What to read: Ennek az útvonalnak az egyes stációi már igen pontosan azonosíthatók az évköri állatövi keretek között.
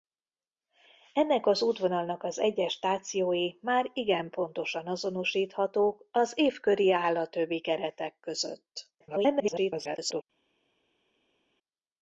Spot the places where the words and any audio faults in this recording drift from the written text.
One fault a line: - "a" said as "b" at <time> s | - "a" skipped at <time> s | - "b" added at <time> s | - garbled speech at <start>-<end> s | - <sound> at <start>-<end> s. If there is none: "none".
- garbled speech at 9.0-10.2 s